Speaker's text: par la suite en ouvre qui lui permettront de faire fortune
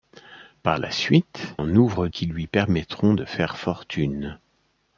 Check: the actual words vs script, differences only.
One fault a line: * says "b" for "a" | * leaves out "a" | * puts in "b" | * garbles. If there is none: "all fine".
all fine